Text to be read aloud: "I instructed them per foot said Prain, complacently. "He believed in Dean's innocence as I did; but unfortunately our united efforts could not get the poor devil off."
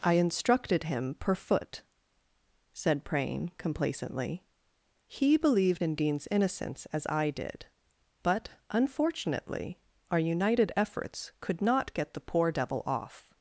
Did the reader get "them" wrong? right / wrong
wrong